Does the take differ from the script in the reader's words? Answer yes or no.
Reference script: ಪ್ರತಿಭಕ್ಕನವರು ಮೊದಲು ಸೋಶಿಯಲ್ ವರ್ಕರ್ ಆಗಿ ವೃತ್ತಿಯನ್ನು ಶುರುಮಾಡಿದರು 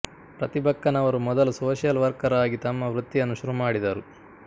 yes